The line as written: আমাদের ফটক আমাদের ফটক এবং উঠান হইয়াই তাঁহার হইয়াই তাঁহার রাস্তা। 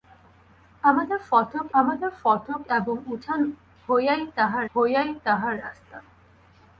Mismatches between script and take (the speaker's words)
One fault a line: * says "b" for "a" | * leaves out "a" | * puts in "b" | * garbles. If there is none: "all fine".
all fine